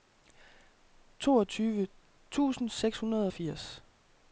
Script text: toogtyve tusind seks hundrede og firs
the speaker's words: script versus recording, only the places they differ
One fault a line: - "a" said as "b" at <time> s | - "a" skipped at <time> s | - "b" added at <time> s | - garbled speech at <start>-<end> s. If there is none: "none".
none